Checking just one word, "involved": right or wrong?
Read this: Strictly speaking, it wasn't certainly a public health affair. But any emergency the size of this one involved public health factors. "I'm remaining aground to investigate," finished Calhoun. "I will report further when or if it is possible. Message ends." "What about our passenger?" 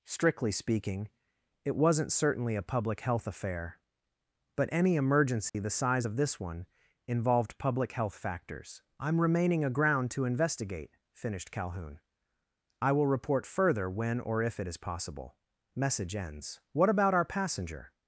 right